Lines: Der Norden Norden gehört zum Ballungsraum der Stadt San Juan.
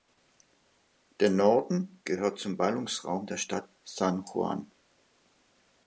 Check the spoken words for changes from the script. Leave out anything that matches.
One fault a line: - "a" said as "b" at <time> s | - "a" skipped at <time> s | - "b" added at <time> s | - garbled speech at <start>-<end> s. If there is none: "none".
- "Norden" skipped at 2.0 s